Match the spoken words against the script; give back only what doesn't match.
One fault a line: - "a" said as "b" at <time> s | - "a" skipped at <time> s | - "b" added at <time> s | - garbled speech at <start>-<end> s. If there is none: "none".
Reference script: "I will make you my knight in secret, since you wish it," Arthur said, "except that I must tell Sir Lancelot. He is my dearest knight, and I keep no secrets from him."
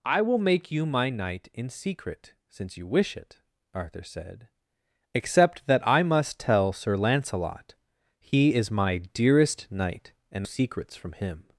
- "I keep no" skipped at 10.5 s